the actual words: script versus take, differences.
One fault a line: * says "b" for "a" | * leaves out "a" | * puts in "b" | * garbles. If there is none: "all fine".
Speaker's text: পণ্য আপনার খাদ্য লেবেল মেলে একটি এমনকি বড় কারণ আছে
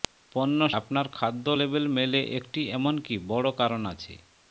all fine